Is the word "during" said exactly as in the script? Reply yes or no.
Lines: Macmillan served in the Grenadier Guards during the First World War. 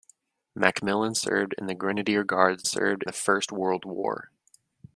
no